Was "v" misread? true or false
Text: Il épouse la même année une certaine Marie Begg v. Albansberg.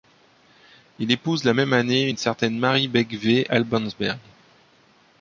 false